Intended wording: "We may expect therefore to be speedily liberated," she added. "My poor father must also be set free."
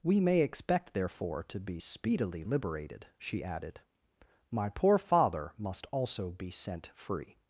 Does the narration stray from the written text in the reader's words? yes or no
yes